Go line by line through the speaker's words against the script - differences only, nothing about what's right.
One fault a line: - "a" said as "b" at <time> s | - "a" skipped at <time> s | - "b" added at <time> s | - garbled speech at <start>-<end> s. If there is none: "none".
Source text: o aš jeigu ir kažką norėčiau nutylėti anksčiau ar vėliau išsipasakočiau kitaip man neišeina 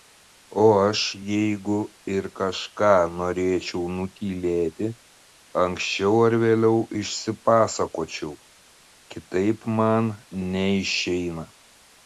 none